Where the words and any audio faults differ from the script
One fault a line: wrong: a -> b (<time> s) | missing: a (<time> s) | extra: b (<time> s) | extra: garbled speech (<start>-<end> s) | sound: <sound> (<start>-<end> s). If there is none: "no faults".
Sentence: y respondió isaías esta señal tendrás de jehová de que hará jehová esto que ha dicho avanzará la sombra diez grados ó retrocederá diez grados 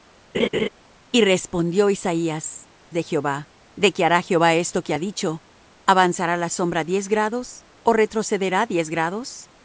sound: laugh (0.3-0.7 s)
missing: esta señal tendrás (2.7 s)